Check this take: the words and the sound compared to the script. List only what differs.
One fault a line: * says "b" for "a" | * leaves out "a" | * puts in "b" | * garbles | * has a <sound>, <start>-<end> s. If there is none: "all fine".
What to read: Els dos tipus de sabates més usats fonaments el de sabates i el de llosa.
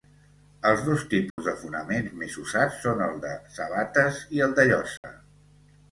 * has a dropout, 1.3-1.4 s
* says "fonaments" for "sabates"
* says "són" for "fonaments"
* has a dropout, 5.0-5.0 s